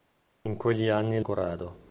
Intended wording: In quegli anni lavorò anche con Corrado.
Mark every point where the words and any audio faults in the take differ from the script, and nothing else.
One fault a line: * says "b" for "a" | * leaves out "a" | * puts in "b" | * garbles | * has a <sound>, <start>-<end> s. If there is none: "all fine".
* leaves out "lavorò anche con"